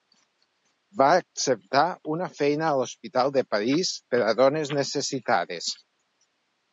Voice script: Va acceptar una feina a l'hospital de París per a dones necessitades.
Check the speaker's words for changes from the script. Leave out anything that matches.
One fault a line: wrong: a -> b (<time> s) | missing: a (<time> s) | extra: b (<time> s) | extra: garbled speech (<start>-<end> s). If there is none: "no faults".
no faults